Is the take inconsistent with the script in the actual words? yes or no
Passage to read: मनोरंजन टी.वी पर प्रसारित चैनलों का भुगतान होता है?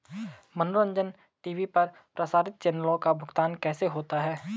yes